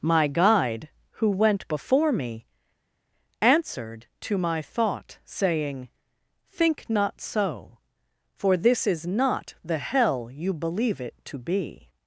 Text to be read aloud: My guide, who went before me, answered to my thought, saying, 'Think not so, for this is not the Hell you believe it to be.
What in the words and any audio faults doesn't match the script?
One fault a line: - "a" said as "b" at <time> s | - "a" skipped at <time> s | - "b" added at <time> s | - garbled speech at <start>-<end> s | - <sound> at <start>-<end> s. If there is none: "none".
none